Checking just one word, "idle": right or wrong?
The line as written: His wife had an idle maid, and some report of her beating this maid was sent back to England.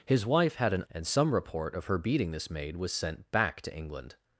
wrong